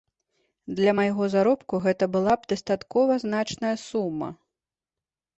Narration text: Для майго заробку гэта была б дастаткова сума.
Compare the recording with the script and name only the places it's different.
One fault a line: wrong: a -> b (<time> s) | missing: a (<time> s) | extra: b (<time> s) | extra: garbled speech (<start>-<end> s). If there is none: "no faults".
extra: значная (3.3 s)